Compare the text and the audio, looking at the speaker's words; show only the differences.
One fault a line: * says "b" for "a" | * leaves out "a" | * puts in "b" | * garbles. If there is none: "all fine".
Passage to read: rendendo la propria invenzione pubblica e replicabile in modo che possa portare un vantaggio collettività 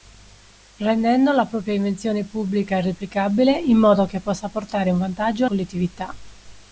all fine